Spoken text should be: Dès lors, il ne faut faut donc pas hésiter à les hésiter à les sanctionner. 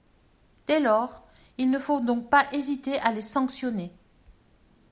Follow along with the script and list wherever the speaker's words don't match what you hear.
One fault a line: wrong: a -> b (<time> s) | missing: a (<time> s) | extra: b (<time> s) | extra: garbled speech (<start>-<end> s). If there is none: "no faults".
missing: faut (2.0 s)
missing: hésiter à les (3.2 s)